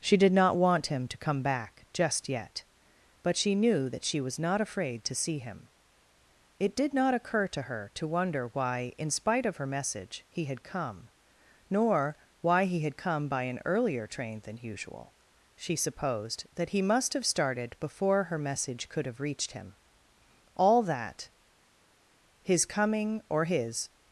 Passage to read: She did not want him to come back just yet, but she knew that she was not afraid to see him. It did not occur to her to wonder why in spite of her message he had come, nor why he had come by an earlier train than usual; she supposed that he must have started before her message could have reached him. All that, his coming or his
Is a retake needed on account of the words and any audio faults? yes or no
no